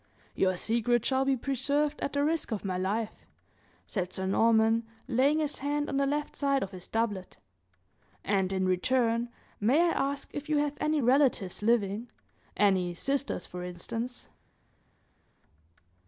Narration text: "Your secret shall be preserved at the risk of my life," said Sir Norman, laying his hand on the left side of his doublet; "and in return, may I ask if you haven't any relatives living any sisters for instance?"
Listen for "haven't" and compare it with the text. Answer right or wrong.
wrong